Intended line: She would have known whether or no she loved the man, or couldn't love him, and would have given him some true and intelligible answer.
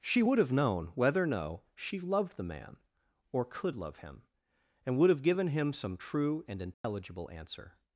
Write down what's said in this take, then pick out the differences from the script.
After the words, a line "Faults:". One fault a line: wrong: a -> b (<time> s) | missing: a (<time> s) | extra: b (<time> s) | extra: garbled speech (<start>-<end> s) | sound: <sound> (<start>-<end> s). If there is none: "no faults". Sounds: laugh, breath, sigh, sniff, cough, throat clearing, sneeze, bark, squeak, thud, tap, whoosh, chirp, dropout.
She would have known whether or no she loved the man, or could love him, and would have given him some true and intelligible answer.
Faults:
wrong: couldn't -> could (3.4 s)
sound: dropout (6.7-6.8 s)